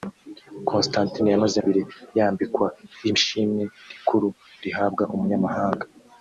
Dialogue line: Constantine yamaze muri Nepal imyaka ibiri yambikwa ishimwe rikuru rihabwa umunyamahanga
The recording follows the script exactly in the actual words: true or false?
false